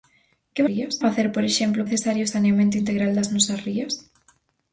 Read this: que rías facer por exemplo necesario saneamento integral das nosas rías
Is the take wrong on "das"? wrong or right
right